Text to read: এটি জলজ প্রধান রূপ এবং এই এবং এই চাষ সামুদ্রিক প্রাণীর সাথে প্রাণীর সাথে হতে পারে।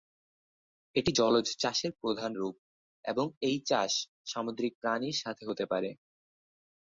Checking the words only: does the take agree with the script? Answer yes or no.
no